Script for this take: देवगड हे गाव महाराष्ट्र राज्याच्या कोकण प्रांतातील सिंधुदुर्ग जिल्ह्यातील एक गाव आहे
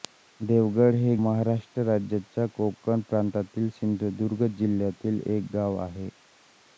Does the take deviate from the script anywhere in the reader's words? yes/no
yes